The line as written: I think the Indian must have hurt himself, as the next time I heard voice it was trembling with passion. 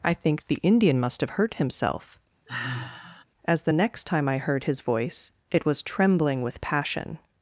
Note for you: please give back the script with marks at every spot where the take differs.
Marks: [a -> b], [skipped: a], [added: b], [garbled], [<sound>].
I think the Indian must have hurt himself, [sigh] as the next time I heard [added: his] voice it was trembling with passion.